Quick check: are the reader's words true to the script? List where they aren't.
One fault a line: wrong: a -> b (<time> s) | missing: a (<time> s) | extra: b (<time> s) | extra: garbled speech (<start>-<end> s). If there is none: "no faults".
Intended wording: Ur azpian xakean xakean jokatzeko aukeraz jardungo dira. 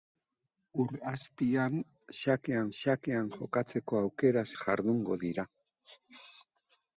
no faults